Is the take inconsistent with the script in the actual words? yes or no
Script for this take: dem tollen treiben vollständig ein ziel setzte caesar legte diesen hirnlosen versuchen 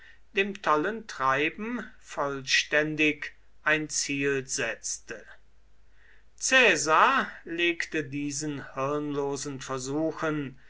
no